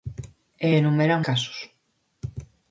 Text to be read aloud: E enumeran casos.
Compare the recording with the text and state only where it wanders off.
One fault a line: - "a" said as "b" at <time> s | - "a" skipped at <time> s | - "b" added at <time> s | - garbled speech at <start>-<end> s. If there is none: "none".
none